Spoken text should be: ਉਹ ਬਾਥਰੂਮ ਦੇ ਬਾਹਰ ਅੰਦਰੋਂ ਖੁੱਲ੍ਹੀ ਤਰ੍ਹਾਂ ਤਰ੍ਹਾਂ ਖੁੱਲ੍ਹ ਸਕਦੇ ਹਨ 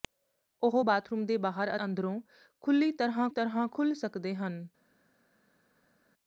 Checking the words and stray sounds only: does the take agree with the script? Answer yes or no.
yes